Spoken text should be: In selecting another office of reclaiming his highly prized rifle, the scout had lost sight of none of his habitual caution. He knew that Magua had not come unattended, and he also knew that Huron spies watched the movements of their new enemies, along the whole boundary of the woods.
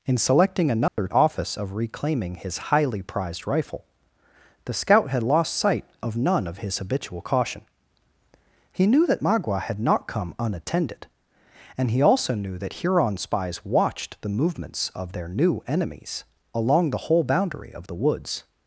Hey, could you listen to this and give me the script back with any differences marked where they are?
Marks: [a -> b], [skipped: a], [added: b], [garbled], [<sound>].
In selecting another [dropout] office of reclaiming his highly prized rifle, the scout had lost sight of none of his habitual caution. He knew that Magua had not come unattended, and he also knew that Huron spies watched the movements of their new enemies, along the whole boundary of the woods.